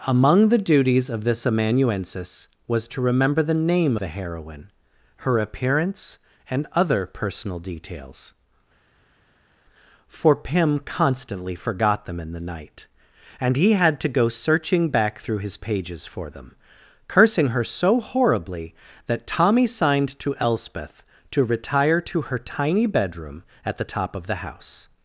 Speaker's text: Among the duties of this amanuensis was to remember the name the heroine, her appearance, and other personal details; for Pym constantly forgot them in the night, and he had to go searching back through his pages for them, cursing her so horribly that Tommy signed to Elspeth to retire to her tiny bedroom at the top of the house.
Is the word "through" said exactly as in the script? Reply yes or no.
yes